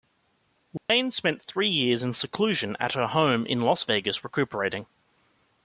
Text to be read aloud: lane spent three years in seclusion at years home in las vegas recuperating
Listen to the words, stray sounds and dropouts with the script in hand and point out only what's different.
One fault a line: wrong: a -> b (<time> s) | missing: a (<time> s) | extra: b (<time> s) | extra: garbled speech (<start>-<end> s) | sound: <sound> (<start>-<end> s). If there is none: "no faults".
sound: dropout (0.8-0.9 s)
wrong: years -> her (2.9 s)